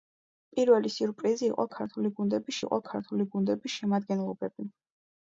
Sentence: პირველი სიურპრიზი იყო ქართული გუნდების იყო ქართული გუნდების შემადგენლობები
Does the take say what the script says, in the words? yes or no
yes